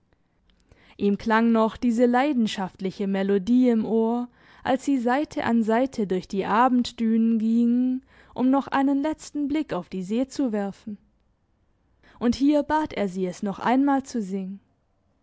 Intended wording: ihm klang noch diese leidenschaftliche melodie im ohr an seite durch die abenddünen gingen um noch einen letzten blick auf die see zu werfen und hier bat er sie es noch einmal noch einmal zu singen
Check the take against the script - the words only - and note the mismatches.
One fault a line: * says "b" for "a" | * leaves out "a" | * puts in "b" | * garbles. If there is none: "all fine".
* puts in "als sie seite"
* leaves out "noch einmal"